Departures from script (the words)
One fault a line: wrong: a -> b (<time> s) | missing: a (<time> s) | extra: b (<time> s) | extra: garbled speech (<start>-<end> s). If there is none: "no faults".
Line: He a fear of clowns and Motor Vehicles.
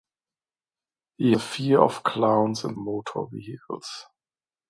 no faults